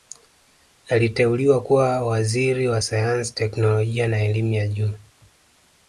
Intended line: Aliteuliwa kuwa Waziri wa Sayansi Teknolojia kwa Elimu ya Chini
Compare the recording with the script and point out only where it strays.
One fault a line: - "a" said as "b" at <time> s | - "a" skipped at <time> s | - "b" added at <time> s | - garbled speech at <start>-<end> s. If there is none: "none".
- "kwa" said as "na" at 4.1 s
- "Chini" said as "Juu" at 4.7 s